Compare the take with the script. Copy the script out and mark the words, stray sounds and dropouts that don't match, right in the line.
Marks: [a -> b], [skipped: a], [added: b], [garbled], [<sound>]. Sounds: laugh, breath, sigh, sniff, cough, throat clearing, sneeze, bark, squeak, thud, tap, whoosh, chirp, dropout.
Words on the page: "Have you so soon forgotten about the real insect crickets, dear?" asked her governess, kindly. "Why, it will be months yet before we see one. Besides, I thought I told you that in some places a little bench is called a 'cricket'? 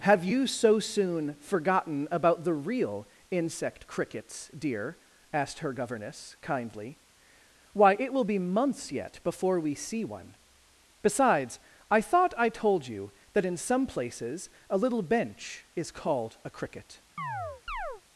"Have you so soon forgotten about the real insect crickets, dear?" asked her governess, kindly. "Why, it will be months yet before we see one. Besides, I thought I told you that in some places a little bench is called a 'cricket'? [chirp]